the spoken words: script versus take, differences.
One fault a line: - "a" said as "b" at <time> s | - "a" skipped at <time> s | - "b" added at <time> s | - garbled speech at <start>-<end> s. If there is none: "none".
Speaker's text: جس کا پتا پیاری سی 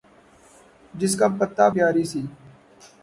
none